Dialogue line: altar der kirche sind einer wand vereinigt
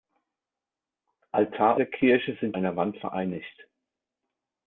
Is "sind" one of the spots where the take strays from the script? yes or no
no